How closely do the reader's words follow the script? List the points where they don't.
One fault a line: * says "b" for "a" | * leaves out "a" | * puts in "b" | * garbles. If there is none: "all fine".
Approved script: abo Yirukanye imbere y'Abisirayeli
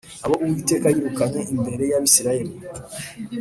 * puts in "Uwiteka"